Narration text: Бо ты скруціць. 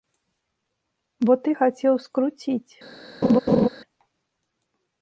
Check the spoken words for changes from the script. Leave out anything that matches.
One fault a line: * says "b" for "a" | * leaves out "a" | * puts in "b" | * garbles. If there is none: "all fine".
* puts in "хацеў"